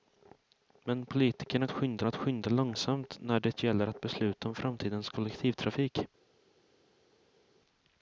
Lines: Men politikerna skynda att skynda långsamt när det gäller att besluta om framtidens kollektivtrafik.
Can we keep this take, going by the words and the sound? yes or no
yes